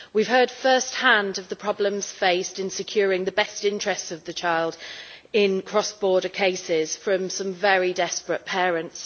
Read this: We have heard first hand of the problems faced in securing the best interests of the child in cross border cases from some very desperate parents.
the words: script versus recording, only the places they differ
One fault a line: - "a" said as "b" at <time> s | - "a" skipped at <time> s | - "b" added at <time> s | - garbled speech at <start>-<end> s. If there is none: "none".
none